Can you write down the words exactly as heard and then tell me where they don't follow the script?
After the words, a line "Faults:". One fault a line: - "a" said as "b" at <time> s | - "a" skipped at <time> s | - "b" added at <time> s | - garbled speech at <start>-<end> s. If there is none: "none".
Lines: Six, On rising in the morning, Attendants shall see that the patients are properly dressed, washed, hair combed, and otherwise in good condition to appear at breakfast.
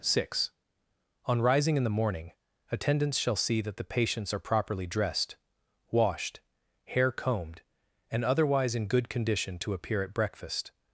Six, On rising in the morning, Attendants shall see that the patients are properly dressed, washed, hair combed, and otherwise in good condition to appear at breakfast.
Faults:
none